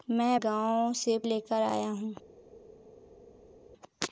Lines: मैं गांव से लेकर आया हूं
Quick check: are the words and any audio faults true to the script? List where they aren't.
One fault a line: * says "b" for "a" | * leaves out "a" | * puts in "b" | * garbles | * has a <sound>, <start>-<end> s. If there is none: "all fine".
all fine